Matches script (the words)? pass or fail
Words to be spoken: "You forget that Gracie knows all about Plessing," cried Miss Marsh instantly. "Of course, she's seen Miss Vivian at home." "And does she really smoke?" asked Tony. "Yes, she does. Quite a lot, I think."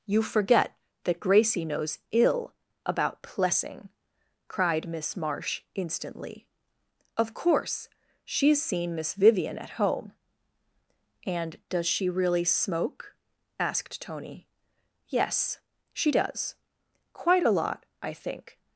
fail